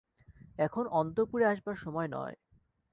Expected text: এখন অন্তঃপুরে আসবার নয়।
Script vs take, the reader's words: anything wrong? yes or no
yes